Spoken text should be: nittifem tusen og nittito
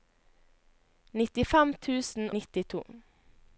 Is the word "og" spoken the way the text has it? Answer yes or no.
no